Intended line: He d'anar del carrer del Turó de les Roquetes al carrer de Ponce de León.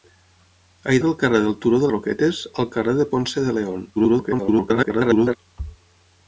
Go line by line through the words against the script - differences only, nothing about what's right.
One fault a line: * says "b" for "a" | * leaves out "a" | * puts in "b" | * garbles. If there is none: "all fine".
* leaves out "d'anar"
* leaves out "les"
* garbles